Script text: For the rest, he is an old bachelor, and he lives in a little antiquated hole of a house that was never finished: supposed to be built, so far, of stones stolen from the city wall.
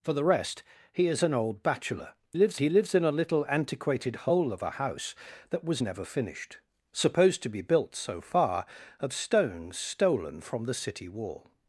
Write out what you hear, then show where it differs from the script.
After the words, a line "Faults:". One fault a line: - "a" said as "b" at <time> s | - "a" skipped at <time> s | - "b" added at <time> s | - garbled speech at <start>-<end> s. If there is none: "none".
For the rest, he is an old bachelor, lives he lives in a little antiquated hole of a house that was never finished: supposed to be built, so far, of stones stolen from the city wall.
Faults:
- "and" said as "lives" at 2.3 s